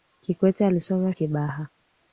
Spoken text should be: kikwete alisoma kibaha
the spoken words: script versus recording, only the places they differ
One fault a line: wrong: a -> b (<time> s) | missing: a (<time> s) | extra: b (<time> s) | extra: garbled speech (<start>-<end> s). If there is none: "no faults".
no faults